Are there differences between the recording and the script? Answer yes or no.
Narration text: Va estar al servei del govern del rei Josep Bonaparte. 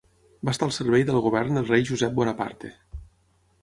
no